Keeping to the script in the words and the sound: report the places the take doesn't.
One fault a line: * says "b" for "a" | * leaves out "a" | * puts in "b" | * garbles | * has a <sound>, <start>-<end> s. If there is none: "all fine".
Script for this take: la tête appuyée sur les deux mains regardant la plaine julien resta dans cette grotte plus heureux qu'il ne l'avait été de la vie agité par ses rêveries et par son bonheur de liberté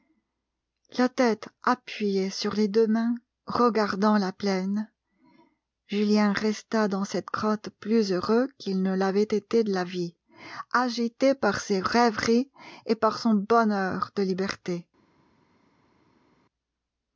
all fine